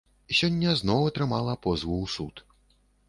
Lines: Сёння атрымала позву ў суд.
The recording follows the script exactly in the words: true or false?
false